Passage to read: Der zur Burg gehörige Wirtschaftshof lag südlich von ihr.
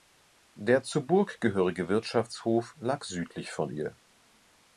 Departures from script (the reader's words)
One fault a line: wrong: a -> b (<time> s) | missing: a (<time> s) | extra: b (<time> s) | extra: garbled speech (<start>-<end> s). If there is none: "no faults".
no faults